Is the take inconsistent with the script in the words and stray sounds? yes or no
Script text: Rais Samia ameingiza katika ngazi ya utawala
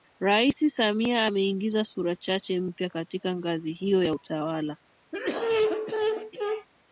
yes